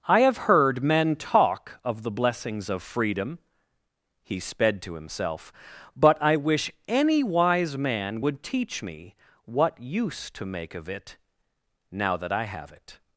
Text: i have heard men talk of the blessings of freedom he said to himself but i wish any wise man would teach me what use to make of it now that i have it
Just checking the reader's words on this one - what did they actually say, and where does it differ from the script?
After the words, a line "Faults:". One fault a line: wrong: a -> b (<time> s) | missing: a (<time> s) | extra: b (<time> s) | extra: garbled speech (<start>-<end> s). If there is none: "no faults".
i have heard men talk of the blessings of freedom he sped to himself but i wish any wise man would teach me what use to make of it now that i have it
Faults:
wrong: said -> sped (4.4 s)